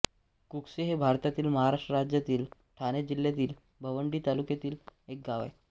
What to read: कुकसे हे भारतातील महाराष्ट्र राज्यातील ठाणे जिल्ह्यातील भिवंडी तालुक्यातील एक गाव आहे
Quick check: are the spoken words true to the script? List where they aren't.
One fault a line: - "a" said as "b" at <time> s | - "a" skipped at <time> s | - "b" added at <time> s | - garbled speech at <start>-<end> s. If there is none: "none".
none